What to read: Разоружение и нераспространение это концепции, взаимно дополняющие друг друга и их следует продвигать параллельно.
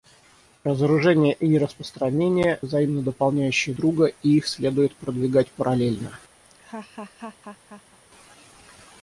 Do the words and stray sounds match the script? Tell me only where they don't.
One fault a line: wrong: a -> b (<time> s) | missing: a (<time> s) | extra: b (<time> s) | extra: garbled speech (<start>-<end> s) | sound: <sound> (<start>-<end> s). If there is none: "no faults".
missing: это концепции (2.6 s)
missing: друг (3.7 s)
sound: laugh (6.4-8.0 s)